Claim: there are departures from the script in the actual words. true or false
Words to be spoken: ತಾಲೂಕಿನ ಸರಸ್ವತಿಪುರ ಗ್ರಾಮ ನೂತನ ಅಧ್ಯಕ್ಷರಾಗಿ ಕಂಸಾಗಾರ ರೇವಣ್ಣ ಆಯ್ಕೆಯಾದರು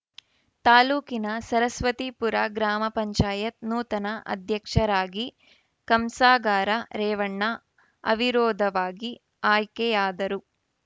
true